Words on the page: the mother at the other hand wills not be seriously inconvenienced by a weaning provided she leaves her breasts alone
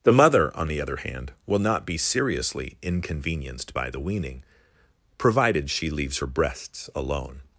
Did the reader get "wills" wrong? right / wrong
wrong